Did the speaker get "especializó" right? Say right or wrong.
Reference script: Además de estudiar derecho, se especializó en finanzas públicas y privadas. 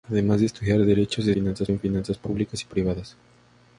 wrong